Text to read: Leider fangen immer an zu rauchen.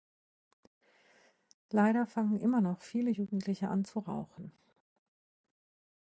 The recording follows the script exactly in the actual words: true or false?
false